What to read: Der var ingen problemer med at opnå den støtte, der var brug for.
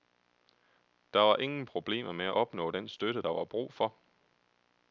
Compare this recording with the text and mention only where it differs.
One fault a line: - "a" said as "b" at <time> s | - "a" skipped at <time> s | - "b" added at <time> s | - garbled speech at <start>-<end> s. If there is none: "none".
none